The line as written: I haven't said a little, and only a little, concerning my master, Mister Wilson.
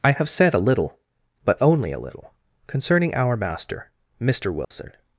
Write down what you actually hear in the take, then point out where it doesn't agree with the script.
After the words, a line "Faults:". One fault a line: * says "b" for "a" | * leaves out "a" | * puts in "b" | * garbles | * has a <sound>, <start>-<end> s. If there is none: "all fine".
I have said a little, but only a little, concerning our master, Mister Wilson.
Faults:
* says "have" for "haven't"
* says "but" for "and"
* says "our" for "my"
* has a dropout, 4.6-4.7 s